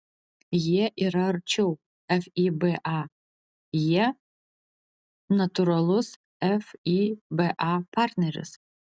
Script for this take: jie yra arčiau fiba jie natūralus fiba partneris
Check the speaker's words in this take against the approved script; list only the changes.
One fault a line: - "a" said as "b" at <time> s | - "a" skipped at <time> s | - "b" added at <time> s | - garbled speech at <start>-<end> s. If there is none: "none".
none